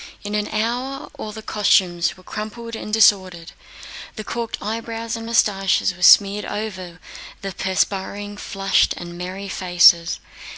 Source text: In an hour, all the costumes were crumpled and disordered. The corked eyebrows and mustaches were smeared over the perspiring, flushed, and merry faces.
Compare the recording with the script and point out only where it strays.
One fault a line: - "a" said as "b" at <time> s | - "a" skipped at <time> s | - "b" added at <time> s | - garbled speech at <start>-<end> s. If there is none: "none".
none